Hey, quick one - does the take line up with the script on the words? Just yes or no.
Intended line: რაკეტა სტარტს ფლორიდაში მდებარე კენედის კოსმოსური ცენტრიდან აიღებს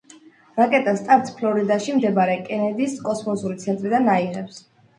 yes